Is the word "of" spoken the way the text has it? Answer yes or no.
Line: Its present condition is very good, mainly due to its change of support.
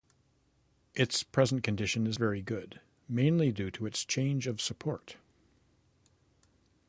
yes